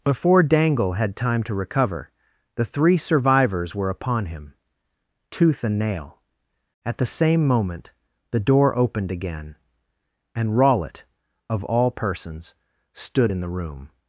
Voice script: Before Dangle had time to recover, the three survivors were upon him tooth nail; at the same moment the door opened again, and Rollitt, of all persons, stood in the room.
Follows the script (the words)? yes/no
no